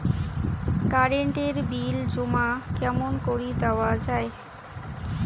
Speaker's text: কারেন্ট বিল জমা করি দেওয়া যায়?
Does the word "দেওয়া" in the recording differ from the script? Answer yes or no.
no